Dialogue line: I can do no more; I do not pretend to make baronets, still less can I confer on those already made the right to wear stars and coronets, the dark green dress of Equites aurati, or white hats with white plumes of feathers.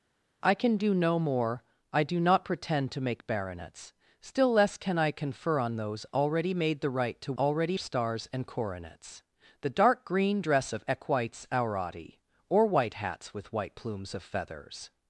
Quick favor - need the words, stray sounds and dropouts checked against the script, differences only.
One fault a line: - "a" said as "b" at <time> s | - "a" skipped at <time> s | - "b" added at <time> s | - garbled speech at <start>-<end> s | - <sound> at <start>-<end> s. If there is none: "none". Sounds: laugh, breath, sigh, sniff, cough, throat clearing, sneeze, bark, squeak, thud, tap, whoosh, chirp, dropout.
- "wear" said as "already" at 7.4 s